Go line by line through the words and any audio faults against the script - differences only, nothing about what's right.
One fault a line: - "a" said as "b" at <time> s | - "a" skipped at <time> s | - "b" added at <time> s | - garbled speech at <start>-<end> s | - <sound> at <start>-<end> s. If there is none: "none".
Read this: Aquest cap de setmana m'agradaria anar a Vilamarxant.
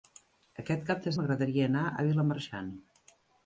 - "setmana" skipped at 1.1 s